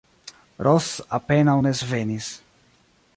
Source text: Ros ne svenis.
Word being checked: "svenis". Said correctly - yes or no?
yes